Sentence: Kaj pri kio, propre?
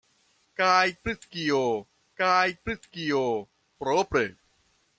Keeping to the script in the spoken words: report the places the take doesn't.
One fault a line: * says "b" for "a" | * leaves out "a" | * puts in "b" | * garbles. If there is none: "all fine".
* puts in "kaj pri kio"